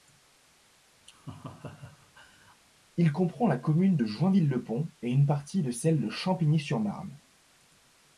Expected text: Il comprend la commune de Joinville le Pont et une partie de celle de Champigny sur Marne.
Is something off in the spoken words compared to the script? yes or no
no